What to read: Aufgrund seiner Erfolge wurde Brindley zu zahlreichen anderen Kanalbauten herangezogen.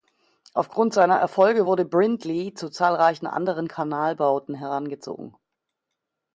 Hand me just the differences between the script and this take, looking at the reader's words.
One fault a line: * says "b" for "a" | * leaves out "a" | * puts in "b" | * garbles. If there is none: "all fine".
all fine